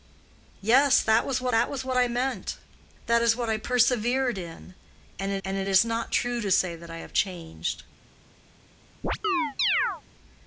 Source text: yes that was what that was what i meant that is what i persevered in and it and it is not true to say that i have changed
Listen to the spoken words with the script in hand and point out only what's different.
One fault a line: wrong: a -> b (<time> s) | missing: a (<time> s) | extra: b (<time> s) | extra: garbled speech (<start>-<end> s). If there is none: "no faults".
no faults